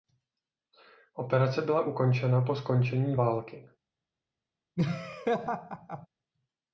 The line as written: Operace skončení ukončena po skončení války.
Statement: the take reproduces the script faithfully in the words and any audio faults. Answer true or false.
false